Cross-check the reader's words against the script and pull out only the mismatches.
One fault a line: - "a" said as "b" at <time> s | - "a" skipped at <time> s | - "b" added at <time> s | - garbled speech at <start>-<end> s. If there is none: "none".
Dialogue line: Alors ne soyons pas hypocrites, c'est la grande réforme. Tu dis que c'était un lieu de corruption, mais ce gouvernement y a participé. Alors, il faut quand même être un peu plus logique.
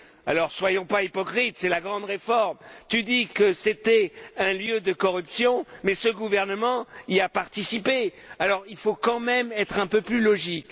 none